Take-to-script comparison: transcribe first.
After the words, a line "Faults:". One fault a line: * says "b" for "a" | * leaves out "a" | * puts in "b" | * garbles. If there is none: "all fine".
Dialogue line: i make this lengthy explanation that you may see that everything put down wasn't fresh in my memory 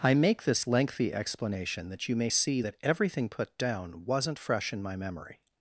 i make this lengthy explanation that you may see that everything put down wasn't fresh in my memory
Faults:
all fine